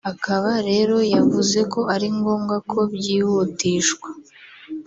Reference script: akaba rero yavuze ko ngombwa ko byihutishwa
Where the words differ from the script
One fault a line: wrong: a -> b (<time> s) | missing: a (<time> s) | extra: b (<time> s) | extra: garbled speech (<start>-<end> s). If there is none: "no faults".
extra: ari (1.9 s)